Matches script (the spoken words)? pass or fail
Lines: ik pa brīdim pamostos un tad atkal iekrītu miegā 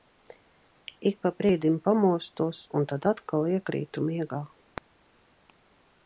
pass